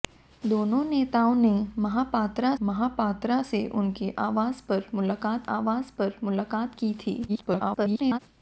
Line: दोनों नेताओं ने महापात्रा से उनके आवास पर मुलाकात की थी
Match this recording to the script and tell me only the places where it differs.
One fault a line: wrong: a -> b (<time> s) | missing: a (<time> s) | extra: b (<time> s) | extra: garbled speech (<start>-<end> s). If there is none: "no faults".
extra: महापात्रा (2.6 s)
extra: आवास पर मुलाकात (5.5 s)
extra: garbled speech (7.3-8.2 s)